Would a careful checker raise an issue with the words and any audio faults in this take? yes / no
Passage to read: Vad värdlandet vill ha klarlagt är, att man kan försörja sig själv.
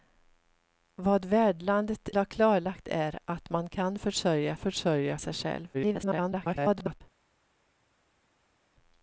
yes